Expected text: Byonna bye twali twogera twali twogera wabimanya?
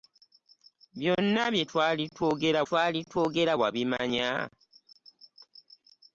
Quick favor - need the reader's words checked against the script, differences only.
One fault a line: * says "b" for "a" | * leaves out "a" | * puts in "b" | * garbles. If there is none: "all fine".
all fine